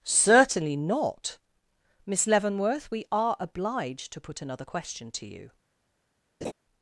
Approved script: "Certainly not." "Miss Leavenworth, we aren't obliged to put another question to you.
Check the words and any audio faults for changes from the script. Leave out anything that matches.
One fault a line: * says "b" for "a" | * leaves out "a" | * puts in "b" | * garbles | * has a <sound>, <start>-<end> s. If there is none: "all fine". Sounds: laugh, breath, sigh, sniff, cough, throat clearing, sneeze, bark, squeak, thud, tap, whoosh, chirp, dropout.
* says "are" for "aren't"
* has a laugh, 6.4-6.5 s